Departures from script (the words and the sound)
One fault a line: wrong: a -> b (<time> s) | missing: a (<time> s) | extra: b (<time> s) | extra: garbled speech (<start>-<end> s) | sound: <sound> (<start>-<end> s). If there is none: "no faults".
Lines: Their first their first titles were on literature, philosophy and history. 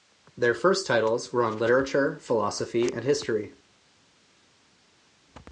missing: their first (0.9 s)